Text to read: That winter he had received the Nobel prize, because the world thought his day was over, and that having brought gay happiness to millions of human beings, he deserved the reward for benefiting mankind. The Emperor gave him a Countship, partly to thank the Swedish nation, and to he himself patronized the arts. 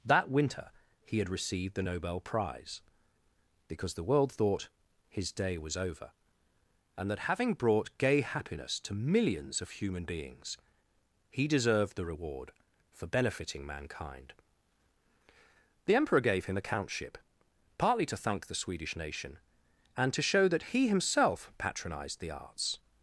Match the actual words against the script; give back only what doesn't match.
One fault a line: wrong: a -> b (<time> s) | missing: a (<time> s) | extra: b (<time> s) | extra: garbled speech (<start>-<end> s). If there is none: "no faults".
extra: show that (20.2 s)